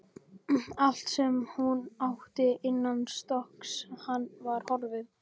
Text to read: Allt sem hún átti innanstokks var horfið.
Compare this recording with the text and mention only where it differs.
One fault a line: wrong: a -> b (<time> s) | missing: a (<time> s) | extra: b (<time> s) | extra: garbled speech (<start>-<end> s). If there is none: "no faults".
no faults